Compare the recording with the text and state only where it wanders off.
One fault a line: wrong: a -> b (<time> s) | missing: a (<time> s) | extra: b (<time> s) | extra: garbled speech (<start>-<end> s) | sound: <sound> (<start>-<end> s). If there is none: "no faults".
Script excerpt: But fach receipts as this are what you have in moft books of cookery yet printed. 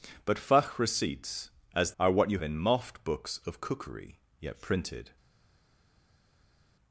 missing: this (1.9 s)
missing: have (2.4 s)